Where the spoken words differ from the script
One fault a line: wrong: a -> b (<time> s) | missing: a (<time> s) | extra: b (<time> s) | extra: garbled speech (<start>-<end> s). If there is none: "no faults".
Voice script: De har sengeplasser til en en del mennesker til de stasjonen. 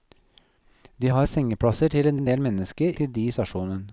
no faults